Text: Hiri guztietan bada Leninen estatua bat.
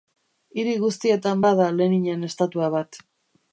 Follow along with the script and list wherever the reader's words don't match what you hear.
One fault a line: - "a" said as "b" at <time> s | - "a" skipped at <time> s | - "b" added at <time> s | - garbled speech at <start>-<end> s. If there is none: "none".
none